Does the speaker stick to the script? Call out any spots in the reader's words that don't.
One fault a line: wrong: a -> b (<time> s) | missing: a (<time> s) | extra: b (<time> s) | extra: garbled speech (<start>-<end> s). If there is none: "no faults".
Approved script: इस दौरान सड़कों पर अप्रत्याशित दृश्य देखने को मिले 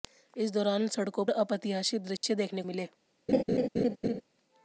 missing: पर (1.2 s)
missing: को (2.6 s)